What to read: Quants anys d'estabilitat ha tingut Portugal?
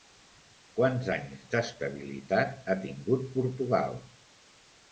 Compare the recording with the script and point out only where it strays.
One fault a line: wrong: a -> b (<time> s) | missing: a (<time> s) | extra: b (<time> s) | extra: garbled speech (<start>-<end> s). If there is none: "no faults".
no faults